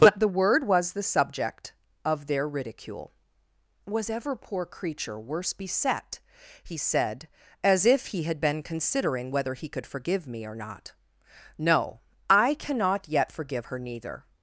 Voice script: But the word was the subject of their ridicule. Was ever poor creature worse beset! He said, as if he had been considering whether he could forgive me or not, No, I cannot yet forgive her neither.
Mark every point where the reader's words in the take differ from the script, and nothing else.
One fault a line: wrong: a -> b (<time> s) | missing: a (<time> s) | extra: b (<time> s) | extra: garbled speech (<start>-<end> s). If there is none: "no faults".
no faults